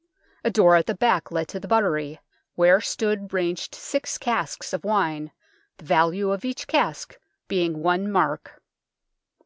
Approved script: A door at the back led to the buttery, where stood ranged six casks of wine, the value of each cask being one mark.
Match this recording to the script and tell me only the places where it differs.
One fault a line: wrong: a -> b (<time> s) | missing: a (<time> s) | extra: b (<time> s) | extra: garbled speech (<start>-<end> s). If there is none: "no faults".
no faults